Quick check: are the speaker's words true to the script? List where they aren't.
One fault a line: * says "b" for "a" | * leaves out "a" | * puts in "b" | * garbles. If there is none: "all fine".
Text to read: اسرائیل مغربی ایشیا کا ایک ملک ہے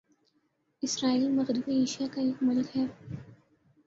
all fine